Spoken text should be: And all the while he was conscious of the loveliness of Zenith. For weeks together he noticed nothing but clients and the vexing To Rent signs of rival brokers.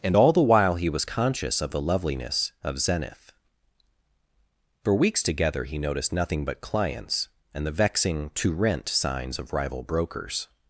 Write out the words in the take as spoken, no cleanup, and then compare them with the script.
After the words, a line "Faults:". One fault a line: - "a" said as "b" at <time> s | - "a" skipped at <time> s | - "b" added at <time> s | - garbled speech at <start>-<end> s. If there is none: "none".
And all the while he was conscious of the loveliness of Zenith. For weeks together he noticed nothing but clients and the vexing To Rent signs of rival brokers.
Faults:
none